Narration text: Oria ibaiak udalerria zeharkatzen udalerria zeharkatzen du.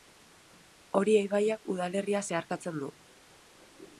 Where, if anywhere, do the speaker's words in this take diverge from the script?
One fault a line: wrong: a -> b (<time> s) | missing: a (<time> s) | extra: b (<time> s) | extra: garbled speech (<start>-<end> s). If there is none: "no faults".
missing: udalerria zeharkatzen (2.8 s)